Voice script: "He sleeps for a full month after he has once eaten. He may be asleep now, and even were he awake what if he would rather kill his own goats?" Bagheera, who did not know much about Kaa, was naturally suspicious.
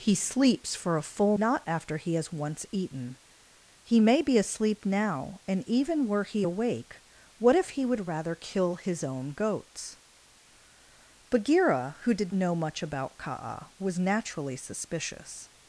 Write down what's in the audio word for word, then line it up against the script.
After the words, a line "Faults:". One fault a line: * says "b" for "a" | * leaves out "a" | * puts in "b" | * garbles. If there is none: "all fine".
"He sleeps for a full not after he has once eaten. He may be asleep now, and even were he awake what if he would rather kill his own goats?" Bagheera, who did know much about Kaa, was naturally suspicious.
Faults:
* says "not" for "month"
* leaves out "not"